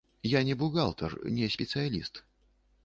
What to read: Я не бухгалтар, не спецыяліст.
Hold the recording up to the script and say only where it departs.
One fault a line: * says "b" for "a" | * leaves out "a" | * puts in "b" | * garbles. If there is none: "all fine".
all fine